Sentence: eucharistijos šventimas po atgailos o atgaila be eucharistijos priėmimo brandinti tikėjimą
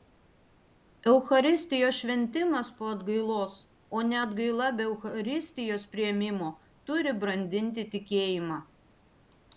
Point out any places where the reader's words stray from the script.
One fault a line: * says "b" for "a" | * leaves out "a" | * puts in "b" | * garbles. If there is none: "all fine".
* puts in "ne"
* puts in "turi"